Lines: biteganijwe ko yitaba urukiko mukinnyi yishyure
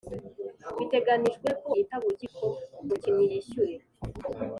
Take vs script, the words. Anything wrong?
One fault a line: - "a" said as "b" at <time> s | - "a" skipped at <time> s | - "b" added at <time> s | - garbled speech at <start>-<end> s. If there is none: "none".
none